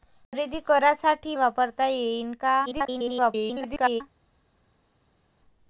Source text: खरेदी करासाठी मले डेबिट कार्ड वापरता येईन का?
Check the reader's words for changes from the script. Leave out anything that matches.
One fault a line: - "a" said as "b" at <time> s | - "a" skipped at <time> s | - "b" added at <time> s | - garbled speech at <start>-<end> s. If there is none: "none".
- "मले डेबिट कार्ड" skipped at 1.4 s
- garbled speech at 2.7-4.0 s